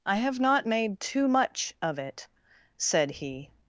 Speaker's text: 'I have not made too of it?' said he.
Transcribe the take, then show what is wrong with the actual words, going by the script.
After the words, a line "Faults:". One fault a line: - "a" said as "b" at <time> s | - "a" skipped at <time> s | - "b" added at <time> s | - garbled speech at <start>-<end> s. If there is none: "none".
'I have not made too much of it?' said he.
Faults:
- "much" added at 1.3 s